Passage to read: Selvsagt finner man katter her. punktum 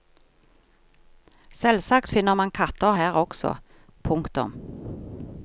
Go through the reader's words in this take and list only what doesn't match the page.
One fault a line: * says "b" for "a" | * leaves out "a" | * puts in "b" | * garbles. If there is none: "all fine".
* puts in "også"